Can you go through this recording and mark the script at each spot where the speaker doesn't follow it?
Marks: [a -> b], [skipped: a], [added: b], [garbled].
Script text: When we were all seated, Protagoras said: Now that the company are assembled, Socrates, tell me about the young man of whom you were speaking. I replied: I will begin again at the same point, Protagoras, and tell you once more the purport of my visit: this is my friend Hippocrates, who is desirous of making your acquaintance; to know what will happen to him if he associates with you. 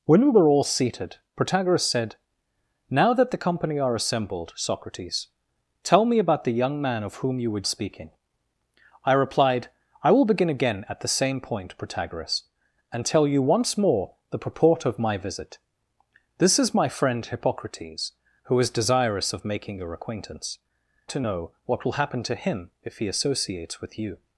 When we were all seated, Protagoras said: Now that the company are assembled, Socrates, tell me about the young man of whom you were speaking. I replied: I will begin again at the same point, Protagoras, and tell you once more the purport of my visit: this is my friend Hippocrates, who is desirous of making your acquaintance; to know what will happen to him if he associates with you.